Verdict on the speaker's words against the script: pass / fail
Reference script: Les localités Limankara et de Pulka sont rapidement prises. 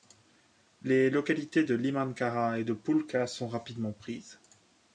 fail